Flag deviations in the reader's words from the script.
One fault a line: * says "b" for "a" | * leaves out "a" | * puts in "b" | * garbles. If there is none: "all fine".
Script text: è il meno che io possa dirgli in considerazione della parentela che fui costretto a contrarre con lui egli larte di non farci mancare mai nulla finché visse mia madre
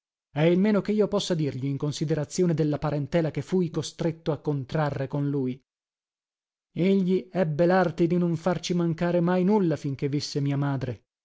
* puts in "ebbe"